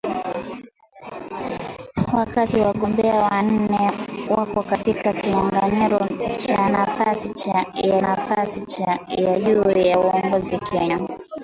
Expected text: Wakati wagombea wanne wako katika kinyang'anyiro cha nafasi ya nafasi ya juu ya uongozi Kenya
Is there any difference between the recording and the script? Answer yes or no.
no